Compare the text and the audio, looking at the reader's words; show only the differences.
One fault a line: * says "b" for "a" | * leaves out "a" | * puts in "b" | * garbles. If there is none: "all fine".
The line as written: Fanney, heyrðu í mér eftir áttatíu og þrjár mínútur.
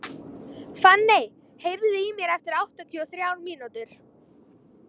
all fine